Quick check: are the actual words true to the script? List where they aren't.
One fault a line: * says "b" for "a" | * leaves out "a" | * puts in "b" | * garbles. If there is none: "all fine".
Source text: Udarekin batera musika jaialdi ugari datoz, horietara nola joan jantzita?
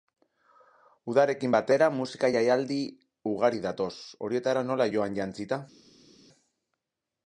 all fine